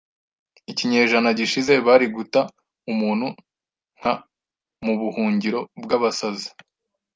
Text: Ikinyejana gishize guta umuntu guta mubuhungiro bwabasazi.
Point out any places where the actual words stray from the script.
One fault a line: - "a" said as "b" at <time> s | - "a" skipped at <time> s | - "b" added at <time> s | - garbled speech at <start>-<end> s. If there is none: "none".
- "bari" added at 1.9 s
- "guta" said as "nka" at 4.0 s